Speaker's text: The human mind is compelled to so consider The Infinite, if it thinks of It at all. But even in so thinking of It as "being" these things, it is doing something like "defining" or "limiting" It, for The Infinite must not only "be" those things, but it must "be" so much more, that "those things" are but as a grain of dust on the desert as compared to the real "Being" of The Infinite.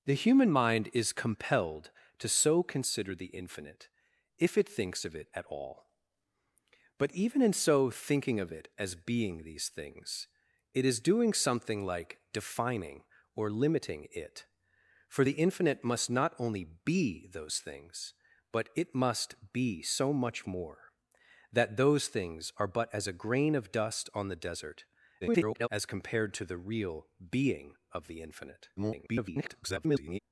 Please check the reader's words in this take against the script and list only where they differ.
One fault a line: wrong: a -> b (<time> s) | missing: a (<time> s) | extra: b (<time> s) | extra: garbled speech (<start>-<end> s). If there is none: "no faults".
extra: garbled speech (25.2-25.7 s)
extra: garbled speech (28.8-30.2 s)